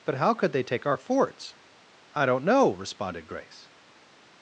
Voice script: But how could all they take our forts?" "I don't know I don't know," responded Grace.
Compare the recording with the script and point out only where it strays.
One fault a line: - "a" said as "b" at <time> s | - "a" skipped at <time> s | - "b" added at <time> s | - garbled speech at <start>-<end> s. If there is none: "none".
- "all" skipped at 0.5 s
- "I don't know" skipped at 2.7 s